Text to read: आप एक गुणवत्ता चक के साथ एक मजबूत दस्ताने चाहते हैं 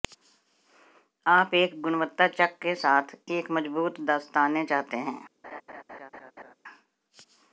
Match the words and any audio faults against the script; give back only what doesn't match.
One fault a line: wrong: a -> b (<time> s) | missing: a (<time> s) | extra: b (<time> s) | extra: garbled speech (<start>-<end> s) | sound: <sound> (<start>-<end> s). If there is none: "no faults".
sound: laugh (5.4-6.5 s)